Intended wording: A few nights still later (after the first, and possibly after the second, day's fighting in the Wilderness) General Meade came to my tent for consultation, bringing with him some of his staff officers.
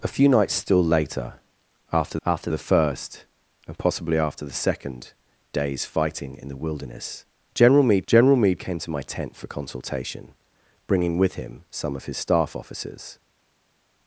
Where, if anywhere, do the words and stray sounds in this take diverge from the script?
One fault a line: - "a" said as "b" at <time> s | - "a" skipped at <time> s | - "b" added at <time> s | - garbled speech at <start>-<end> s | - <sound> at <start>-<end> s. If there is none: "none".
- "after" added at 2.3 s
- "General Meade" added at 8.1 s